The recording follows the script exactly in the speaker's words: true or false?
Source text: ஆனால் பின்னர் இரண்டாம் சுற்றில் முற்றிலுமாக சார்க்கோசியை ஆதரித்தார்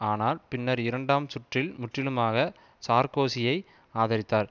true